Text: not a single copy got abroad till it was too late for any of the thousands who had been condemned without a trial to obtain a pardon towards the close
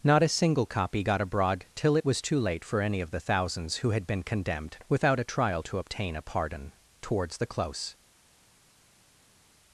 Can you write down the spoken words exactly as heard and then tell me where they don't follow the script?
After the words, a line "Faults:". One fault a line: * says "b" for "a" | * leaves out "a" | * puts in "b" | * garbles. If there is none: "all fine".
not a single copy got abroad till it was too late for any of the thousands who had been condemned without a trial to obtain a pardon towards the close
Faults:
all fine